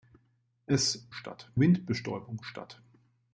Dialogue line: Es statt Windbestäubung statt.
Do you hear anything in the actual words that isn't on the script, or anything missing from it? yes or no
no